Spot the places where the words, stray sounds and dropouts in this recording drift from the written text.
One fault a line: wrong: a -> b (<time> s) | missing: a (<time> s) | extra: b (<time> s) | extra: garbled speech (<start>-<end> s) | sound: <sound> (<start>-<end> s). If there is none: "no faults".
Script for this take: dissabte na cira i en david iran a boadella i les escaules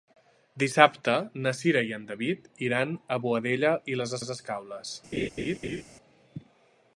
extra: les (4.2 s)
sound: laugh (5.1-5.8 s)